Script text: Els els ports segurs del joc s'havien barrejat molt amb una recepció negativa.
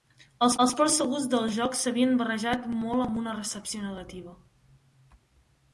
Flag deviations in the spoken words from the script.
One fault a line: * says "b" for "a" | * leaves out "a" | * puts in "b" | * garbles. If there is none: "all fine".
all fine